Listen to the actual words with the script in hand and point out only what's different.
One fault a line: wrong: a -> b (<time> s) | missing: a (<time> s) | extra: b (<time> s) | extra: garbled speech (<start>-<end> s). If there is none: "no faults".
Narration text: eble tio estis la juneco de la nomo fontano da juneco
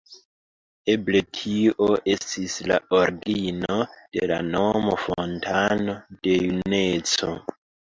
wrong: juneco -> origino (3.0 s)
wrong: da -> de (6.3 s)